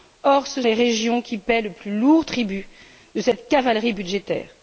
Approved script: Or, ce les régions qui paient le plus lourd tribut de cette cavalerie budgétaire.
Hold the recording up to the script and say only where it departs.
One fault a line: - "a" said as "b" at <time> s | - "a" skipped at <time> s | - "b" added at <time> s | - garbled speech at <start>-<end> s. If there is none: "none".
none